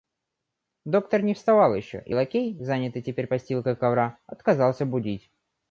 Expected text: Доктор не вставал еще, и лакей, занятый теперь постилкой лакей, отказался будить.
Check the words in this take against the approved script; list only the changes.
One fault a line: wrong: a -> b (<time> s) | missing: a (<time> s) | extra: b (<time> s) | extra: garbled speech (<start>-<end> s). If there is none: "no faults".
wrong: лакей -> ковра (3.8 s)